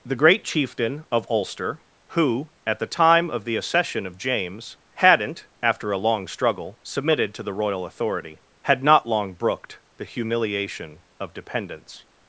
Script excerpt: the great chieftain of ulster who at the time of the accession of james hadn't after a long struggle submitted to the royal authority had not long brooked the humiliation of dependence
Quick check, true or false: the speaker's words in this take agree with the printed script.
true